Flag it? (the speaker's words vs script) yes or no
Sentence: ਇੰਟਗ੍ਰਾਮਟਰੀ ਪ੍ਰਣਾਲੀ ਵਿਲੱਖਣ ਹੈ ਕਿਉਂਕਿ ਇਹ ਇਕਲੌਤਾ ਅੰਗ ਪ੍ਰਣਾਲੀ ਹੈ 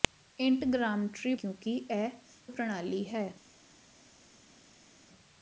yes